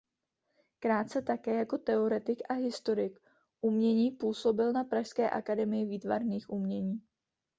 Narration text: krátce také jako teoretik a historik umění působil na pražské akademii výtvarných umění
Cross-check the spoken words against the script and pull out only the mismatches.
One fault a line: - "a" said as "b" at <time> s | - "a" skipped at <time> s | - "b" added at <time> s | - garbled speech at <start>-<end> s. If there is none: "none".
none